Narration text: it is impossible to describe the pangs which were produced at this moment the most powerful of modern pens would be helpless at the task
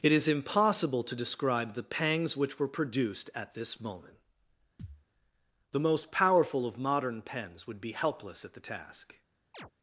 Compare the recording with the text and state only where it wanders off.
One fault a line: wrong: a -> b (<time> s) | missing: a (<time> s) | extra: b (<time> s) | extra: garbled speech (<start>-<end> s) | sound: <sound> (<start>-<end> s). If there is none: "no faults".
sound: thud (4.8-5.1 s)
sound: chirp (9.5-9.7 s)